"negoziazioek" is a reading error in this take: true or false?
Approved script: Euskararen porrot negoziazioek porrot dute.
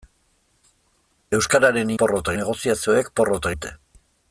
false